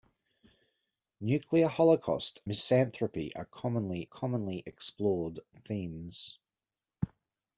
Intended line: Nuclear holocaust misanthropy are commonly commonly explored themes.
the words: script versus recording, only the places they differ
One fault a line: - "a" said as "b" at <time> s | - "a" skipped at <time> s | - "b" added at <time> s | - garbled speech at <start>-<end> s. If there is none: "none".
none